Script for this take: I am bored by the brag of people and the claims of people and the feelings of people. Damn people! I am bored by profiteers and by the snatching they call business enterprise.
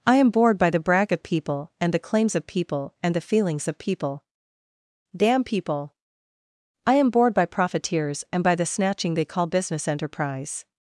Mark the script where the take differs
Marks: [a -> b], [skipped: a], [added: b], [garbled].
I am bored by the brag of people and the claims of people and the feelings of people. Damn people! I am bored by profiteers and by the snatching they call business enterprise.